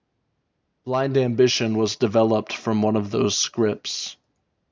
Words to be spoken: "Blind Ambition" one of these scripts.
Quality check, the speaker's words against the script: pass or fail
fail